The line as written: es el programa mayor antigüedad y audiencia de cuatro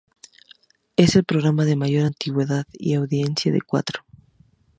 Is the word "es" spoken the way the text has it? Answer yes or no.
yes